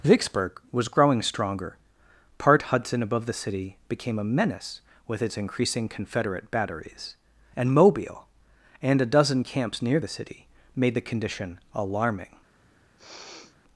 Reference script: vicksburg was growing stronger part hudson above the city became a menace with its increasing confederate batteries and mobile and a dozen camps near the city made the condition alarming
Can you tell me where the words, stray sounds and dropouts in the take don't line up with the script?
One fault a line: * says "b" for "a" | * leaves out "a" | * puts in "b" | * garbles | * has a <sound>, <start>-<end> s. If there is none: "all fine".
* has a sniff, 13.0-13.6 s